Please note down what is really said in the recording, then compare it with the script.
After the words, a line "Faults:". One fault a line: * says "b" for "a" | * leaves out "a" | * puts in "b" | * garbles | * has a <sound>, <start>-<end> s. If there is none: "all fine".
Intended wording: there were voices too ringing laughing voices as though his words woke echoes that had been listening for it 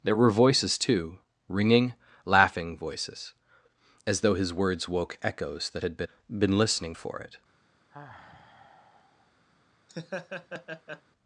there were voices too ringing laughing voices as though his words woke echoes that had been been listening for it
Faults:
* puts in "been"
* has a sigh, 7.9-9.3 s
* has a laugh, 9.9-11.0 s